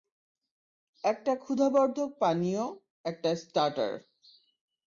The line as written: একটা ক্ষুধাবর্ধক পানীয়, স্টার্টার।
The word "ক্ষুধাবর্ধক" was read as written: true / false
true